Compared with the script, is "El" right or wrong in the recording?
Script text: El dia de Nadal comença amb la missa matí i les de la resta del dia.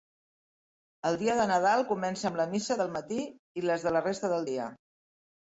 right